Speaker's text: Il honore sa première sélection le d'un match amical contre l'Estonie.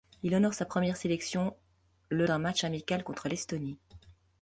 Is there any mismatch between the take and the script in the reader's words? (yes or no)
no